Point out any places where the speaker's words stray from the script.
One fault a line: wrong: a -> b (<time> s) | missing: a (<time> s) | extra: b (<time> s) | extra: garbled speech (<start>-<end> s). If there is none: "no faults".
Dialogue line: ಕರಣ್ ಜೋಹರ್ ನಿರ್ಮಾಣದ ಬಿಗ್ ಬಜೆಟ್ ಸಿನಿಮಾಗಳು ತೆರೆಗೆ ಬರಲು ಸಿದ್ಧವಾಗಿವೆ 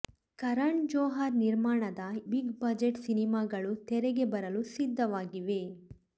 no faults